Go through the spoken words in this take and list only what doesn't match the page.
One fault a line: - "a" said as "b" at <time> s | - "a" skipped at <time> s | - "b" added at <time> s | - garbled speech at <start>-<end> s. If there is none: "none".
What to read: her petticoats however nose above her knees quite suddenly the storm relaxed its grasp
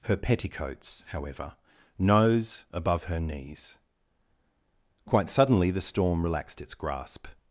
none